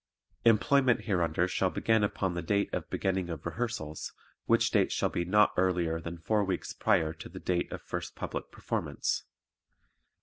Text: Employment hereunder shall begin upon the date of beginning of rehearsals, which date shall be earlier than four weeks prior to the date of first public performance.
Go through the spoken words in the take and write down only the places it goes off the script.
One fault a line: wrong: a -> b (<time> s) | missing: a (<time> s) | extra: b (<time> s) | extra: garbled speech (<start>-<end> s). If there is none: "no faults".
extra: not (5.2 s)